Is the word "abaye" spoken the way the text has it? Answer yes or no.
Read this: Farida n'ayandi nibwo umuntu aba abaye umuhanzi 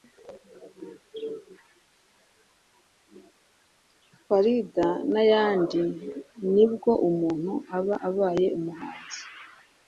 yes